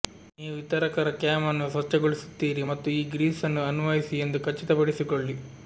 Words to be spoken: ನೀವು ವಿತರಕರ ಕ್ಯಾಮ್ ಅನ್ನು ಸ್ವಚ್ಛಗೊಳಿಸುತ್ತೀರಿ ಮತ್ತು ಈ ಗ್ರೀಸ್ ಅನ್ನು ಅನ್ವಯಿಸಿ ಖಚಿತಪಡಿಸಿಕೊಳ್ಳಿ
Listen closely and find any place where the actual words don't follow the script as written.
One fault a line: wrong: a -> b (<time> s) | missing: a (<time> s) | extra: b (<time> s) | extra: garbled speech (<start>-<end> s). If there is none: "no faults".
extra: ಎಂದು (4.2 s)